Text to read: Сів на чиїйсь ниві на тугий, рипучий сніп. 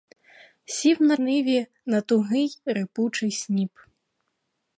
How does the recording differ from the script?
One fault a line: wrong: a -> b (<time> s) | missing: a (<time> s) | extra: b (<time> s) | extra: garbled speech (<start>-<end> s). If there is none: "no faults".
missing: чиїйсь (1.2 s)